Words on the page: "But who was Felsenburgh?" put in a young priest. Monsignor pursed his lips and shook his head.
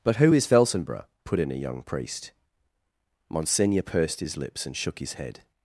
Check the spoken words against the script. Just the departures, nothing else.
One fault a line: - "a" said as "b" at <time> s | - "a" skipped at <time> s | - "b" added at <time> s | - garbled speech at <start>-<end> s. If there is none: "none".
- "was" said as "is" at 0.3 s